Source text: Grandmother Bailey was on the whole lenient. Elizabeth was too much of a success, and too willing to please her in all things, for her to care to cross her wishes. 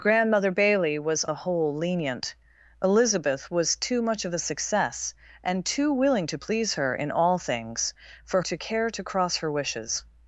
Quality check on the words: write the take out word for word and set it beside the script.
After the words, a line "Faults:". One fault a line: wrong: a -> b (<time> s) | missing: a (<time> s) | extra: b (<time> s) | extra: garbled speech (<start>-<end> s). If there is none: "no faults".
Grandmother Bailey was the whole lenient. Elizabeth was too much of a success, and too willing to please her in all things, for to care to cross her wishes.
Faults:
missing: on (1.2 s)
missing: her (8.4 s)